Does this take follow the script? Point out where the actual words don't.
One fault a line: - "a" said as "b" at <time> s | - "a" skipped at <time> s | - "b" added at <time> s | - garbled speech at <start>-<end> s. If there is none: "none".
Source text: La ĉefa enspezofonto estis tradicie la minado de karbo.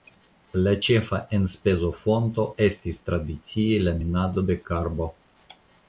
none